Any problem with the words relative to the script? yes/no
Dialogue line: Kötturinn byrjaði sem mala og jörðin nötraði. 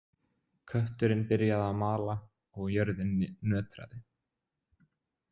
yes